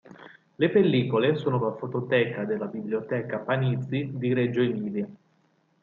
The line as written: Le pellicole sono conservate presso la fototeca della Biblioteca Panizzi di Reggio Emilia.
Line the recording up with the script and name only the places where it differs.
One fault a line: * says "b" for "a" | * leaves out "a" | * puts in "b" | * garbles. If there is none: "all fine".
* leaves out "conservate presso"